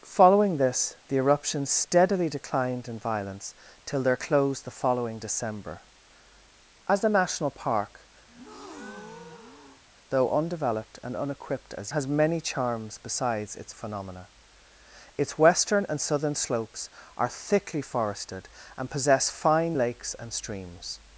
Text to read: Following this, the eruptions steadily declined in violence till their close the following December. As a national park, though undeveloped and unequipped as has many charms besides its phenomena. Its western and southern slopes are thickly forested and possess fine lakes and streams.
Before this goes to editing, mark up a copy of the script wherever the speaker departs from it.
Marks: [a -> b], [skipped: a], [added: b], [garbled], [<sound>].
Following this, the eruptions steadily declined in violence till their close the following December. As a national park, [breath] though undeveloped and unequipped as has many charms besides its phenomena. Its western and southern slopes are thickly forested and possess fine lakes and streams.